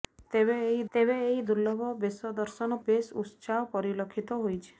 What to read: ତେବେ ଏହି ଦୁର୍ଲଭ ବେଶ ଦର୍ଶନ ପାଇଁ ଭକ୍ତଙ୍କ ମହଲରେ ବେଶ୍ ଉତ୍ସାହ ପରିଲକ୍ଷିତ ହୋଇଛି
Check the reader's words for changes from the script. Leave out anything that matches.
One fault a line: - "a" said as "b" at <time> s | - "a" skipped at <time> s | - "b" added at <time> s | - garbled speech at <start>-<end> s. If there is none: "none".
- "ତେବେ ଏହି" added at 0.9 s
- "ପାଇଁ ଭକ୍ତଙ୍କ ମହଲରେ" skipped at 2.8 s